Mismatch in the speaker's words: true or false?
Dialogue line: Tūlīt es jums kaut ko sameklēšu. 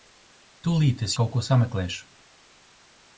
true